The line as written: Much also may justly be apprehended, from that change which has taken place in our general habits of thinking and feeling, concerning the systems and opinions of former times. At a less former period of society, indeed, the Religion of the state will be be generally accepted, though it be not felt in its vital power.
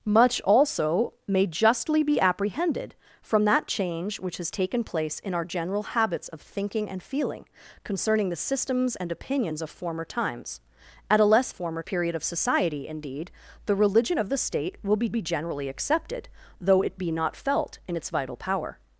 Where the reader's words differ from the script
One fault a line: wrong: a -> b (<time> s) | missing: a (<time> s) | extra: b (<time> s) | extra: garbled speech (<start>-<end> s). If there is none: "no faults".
no faults